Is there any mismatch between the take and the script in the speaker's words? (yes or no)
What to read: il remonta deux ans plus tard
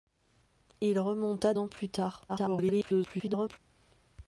yes